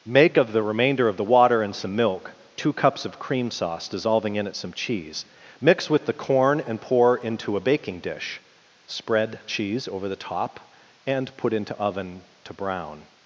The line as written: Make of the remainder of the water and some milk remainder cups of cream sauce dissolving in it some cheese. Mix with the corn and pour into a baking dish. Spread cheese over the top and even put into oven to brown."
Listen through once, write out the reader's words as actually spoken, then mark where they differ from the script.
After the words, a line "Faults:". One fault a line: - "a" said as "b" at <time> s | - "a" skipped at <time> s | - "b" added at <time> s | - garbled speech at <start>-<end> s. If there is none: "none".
Make of the remainder of the water and some milk two cups of cream sauce dissolving in it some cheese. Mix with the corn and pour into a baking dish. Spread cheese over the top and put into oven to brown."
Faults:
- "remainder" said as "two" at 2.6 s
- "even" skipped at 11.3 s